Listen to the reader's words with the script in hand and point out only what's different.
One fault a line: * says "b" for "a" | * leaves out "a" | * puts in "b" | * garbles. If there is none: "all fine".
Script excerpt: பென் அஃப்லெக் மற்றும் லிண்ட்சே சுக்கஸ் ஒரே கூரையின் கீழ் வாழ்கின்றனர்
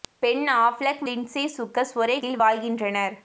* leaves out "மற்றும்"
* leaves out "கூரையின்"